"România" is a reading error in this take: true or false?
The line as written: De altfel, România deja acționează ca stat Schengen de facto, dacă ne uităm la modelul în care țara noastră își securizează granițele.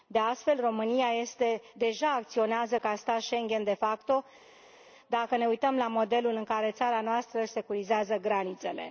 false